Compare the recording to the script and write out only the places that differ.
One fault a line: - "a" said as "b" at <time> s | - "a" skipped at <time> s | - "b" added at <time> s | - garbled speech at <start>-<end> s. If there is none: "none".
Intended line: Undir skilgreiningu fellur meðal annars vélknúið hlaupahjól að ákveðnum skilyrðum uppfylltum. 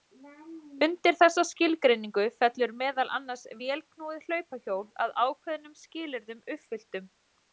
- "þessa" added at 1.2 s